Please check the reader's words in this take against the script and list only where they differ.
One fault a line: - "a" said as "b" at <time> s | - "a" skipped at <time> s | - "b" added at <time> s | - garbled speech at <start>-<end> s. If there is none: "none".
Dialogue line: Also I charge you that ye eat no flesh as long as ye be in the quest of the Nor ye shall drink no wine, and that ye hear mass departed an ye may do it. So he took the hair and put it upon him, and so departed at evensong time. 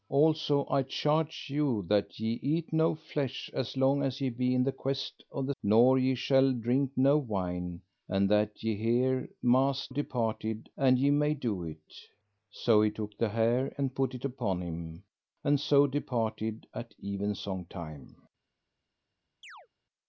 none